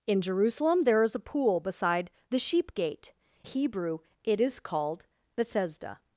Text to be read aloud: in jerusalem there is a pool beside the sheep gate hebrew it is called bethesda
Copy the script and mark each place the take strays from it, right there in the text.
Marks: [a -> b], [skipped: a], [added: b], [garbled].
in jerusalem there is a pool beside the sheep gate hebrew it is called bethesda